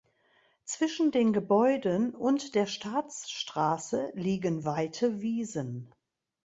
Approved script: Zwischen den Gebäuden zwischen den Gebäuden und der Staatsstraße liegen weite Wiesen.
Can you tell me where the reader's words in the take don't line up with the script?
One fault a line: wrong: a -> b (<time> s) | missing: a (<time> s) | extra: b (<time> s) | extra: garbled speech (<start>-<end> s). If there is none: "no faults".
missing: zwischen den Gebäuden (2.1 s)